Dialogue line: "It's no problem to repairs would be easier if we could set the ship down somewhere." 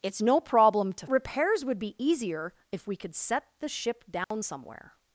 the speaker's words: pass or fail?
pass